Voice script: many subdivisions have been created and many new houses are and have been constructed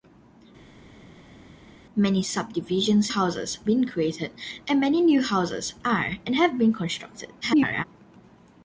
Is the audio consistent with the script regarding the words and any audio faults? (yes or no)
no